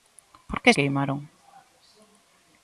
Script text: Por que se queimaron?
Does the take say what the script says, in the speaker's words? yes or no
no